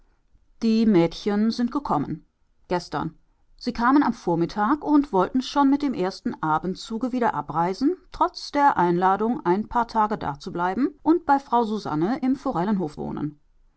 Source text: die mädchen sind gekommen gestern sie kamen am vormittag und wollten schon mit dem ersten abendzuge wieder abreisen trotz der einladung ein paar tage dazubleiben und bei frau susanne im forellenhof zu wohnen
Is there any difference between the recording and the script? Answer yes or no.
yes